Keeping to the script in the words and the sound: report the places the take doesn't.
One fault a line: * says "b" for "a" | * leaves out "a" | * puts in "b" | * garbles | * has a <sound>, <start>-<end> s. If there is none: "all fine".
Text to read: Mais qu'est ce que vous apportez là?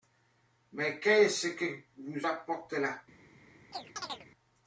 * has a chirp, 3.7-4.3 s